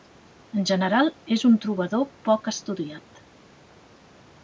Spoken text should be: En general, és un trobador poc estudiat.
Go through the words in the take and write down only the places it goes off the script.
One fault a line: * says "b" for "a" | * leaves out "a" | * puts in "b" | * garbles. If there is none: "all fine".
all fine